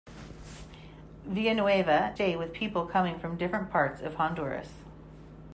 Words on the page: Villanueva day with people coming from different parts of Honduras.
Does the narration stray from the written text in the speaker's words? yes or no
no